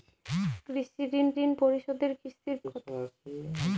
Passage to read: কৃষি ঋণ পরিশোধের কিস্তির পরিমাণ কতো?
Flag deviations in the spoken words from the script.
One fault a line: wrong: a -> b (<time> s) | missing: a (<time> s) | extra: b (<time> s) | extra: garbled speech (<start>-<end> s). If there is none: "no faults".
extra: ঋণ (1.4 s)
missing: পরিমাণ (2.6 s)